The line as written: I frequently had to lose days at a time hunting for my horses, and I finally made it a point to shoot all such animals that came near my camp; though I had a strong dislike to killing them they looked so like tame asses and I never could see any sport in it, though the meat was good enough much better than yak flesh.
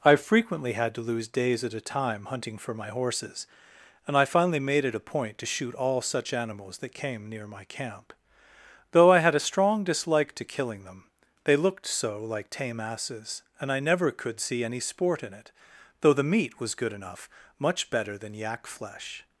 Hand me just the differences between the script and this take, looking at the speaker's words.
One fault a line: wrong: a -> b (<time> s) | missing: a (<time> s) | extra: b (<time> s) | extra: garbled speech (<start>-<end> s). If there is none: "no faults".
no faults